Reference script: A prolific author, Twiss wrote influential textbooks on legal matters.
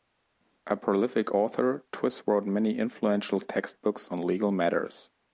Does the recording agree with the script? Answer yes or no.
no